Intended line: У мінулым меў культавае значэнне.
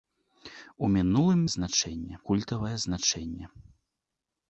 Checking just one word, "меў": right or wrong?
wrong